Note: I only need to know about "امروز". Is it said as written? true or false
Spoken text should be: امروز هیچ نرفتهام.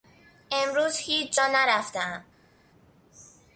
true